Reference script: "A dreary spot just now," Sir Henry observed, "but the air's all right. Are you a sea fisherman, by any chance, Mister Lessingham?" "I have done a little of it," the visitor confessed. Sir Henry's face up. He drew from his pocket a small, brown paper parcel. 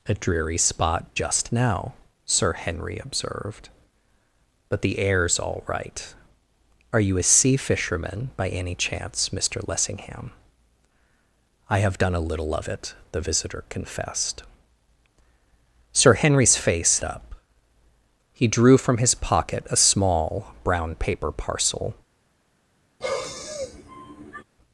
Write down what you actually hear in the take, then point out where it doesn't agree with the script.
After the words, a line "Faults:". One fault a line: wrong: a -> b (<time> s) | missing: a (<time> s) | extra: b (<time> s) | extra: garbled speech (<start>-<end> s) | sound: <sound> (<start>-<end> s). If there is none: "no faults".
"A dreary spot just now," Sir Henry observed, "but the air's all right. Are you a sea fisherman, by any chance, Mister Lessingham?" "I have done a little of it," the visitor confessed. Sir Henry's face up. He drew from his pocket a small, brown paper parcel.
Faults:
sound: sigh (23.0-24.4 s)